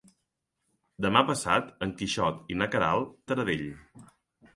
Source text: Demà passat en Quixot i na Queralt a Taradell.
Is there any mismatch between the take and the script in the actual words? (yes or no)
no